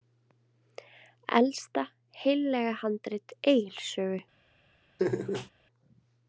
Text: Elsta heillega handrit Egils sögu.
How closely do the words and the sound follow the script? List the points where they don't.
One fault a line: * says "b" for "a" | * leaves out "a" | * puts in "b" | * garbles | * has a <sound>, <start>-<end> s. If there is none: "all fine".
* has a laugh, 5.0-5.5 s